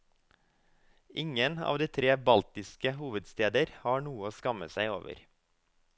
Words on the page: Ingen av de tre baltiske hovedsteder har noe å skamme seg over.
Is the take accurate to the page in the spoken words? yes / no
yes